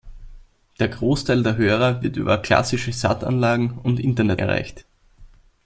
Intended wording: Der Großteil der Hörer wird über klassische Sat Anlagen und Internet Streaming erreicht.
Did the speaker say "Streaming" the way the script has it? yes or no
no